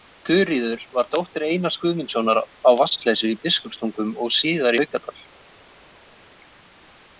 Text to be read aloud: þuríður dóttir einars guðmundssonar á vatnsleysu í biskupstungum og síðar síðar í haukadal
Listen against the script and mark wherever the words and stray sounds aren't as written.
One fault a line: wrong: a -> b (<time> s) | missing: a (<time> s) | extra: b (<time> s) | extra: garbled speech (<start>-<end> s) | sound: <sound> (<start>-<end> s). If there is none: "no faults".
extra: var (1.0 s)
missing: síðar (4.8 s)